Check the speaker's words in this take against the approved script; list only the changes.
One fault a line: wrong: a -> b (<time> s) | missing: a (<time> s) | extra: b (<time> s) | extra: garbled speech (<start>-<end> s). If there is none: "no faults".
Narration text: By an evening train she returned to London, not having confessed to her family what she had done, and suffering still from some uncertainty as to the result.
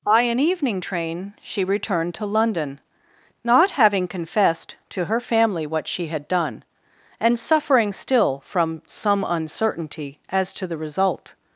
no faults